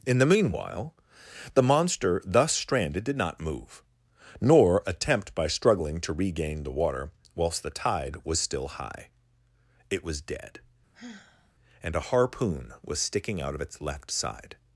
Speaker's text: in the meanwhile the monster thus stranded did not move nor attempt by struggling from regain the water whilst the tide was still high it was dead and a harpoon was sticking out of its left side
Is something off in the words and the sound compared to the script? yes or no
yes